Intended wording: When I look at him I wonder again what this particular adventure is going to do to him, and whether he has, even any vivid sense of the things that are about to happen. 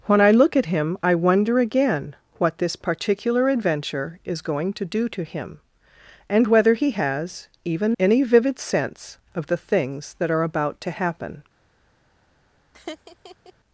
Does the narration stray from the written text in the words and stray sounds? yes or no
yes